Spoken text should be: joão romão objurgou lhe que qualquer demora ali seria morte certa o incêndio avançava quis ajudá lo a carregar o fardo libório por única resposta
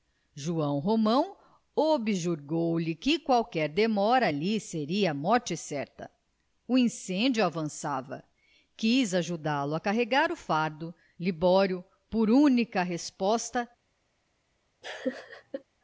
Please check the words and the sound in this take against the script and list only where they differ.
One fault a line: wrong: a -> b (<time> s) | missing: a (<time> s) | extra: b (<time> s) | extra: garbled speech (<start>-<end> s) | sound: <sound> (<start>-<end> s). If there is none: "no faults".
sound: laugh (14.8-15.6 s)